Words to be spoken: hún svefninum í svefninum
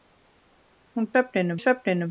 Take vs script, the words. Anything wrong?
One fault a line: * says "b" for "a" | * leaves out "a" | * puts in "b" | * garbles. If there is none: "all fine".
all fine